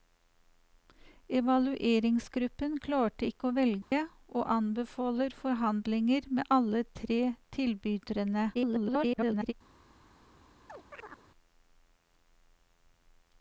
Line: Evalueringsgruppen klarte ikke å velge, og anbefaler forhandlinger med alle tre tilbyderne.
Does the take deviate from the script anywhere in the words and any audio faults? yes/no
yes